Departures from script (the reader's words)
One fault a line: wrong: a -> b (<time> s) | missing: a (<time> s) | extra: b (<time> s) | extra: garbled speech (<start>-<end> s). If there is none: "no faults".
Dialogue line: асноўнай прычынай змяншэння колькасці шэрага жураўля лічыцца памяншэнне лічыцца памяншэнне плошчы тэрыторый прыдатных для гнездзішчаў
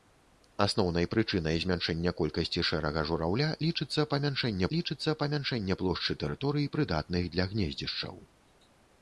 no faults